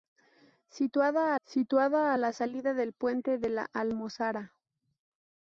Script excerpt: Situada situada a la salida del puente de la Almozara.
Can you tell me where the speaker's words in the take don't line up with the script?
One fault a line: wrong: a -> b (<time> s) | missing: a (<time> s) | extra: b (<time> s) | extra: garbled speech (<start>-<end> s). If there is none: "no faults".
no faults